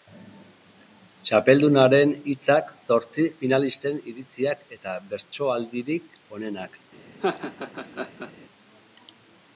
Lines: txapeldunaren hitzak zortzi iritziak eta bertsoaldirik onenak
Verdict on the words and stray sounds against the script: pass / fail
fail